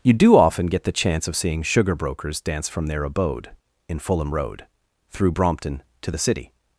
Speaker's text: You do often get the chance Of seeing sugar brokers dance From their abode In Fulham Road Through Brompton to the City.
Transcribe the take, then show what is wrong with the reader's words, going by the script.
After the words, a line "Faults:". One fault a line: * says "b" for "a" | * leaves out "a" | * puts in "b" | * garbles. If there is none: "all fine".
You do often get the chance Of seeing sugar brokers dance From their abode In Fulham Road Through Brompton to the City.
Faults:
all fine